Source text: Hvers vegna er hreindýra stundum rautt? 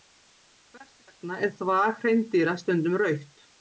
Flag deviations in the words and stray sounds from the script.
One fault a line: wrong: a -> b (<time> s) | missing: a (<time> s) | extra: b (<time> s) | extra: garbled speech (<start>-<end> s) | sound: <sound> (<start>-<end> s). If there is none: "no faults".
extra: þvag (1.6 s)